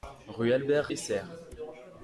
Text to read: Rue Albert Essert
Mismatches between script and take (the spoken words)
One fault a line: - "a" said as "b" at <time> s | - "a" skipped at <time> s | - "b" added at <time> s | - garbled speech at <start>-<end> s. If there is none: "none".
none